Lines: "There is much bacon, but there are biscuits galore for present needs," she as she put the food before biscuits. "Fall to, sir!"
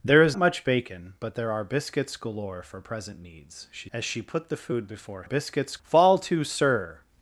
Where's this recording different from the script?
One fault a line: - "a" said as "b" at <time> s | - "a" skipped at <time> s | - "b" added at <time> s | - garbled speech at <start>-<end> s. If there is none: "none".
none